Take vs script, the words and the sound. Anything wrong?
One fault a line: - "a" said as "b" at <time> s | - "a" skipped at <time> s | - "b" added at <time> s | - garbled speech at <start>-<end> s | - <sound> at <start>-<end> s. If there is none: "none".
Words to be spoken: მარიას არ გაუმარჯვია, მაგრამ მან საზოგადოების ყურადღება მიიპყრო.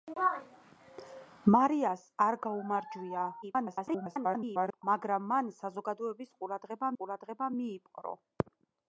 - garbled speech at 3.4-4.8 s
- "ყურადღება" added at 7.0 s